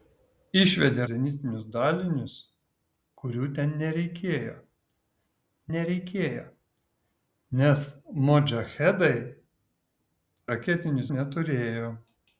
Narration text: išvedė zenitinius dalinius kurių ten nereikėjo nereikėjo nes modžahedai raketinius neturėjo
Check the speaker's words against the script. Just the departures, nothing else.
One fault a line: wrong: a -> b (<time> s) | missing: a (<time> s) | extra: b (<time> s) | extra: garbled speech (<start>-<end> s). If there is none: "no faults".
no faults